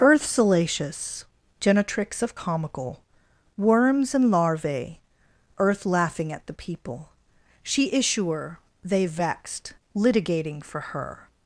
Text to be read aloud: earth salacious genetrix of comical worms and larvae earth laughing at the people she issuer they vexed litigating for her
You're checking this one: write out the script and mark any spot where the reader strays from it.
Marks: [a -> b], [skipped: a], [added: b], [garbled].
earth salacious genetrix of comical worms and larvae earth laughing at the people she issuer they vexed litigating for her